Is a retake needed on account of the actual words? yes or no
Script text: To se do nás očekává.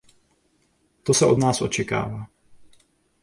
yes